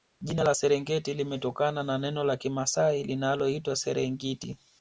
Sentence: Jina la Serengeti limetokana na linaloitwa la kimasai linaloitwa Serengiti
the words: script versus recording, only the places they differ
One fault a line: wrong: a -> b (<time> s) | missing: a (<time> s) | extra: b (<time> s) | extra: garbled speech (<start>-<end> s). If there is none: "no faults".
wrong: linaloitwa -> neno (2.0 s)